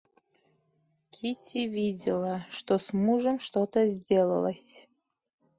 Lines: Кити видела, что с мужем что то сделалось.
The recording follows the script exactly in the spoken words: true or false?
true